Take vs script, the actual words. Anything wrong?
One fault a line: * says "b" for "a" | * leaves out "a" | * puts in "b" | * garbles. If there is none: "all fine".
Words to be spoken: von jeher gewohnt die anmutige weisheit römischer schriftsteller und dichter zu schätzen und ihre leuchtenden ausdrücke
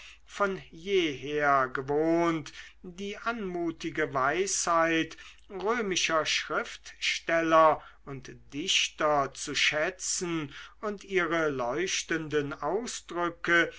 all fine